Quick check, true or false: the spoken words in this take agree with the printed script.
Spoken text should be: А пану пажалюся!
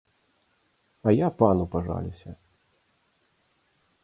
false